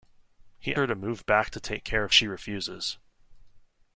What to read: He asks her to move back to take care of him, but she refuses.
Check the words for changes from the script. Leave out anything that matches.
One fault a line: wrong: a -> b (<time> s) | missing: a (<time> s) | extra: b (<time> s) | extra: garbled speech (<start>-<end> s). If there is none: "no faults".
missing: asks (0.8 s)
missing: him but (2.1 s)